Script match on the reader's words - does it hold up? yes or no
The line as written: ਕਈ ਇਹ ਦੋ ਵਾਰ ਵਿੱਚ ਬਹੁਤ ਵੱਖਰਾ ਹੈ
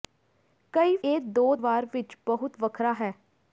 yes